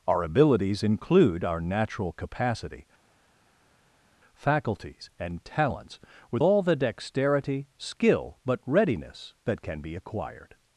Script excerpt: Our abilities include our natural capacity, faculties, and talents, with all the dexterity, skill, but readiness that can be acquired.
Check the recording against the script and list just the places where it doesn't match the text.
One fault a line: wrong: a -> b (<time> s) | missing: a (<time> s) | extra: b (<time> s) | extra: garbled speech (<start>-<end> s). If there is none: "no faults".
no faults